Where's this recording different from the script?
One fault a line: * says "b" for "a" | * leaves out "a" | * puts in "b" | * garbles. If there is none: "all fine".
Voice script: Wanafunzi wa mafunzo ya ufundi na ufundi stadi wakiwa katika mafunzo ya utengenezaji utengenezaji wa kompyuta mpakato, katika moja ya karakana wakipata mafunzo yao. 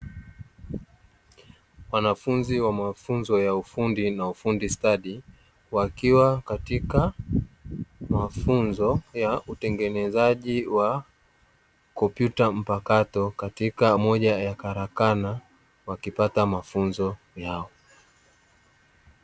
* leaves out "utengenezaji"